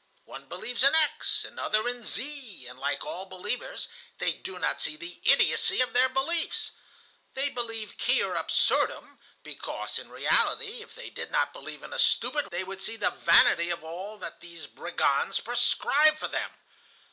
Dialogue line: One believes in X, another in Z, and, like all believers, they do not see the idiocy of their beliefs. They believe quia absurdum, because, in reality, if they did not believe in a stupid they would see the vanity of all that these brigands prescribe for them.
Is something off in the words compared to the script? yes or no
no